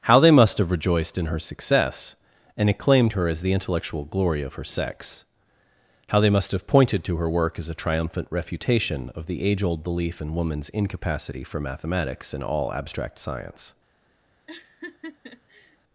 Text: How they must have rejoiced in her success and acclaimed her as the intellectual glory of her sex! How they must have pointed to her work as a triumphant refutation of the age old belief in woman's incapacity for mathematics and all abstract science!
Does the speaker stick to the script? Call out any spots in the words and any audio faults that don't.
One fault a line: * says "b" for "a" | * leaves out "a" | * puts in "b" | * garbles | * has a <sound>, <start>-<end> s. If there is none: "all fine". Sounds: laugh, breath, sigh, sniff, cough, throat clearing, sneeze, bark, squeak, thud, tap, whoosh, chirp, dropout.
* has a laugh, 14.5-15.8 s